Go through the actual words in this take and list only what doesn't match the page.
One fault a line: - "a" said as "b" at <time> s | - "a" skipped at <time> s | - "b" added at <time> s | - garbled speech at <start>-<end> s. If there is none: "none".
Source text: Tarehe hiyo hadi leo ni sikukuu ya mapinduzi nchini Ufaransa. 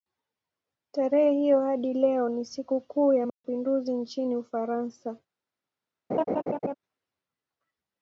none